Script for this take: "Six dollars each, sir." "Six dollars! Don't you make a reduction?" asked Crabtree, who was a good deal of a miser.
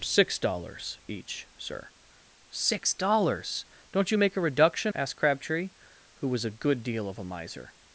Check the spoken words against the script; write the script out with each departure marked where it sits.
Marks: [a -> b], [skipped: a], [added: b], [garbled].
"Six dollars each, sir." "Six dollars! Don't you make a reduction?" asked Crabtree, who was a good deal of a miser.